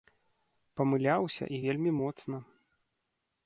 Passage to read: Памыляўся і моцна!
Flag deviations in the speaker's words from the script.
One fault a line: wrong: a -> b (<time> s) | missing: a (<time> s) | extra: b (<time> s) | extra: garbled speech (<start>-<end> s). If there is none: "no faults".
extra: вельмі (1.6 s)